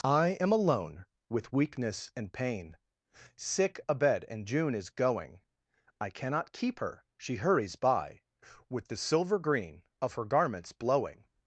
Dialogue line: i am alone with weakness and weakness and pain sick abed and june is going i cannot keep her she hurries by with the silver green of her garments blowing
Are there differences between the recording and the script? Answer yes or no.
yes